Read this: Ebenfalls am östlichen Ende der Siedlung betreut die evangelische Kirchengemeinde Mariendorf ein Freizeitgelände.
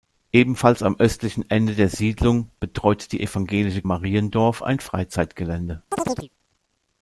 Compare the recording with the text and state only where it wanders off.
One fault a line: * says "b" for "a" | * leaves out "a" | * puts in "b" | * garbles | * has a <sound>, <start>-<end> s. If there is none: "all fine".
* leaves out "Kirchengemeinde"
* has a chirp, 5.9-6.3 s